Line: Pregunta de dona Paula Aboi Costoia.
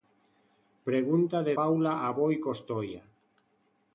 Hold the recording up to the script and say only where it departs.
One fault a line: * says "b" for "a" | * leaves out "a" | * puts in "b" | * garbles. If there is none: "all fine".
* leaves out "dona"